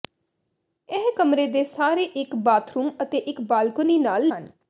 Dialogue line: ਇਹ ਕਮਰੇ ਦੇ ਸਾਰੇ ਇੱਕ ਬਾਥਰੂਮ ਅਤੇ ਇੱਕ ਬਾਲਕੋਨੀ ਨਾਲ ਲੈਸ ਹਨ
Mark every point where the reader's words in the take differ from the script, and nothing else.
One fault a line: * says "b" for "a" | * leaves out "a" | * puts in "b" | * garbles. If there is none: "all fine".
* leaves out "ਲੈਸ"